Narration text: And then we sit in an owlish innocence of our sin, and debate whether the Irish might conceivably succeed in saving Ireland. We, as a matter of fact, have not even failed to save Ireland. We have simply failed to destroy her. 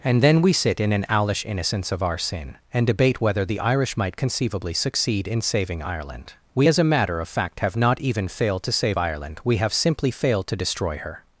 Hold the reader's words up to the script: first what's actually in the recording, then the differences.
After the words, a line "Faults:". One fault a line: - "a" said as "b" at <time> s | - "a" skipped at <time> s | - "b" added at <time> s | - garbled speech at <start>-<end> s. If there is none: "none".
And then we sit in an owlish innocence of our sin, and debate whether the Irish might conceivably succeed in saving Ireland. We, as a matter of fact, have not even failed to save Ireland. We have simply failed to destroy her.
Faults:
none